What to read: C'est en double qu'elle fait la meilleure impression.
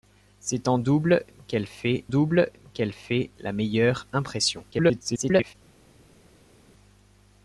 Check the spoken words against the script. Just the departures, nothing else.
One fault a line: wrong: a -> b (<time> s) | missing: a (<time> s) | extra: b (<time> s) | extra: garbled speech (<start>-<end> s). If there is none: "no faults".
extra: double qu'elle fait (2.1 s)
extra: garbled speech (4.7-5.5 s)